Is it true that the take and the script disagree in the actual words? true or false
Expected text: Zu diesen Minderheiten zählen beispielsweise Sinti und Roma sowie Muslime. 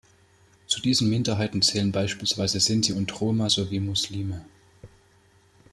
false